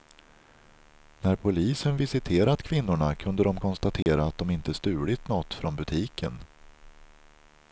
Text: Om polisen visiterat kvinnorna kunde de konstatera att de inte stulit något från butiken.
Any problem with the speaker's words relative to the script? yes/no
yes